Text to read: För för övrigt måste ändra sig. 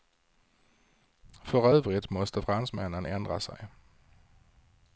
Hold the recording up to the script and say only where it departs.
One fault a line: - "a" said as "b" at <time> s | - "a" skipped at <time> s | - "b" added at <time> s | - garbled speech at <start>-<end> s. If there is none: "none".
- "för" skipped at 1.7 s
- "fransmännen" added at 2.4 s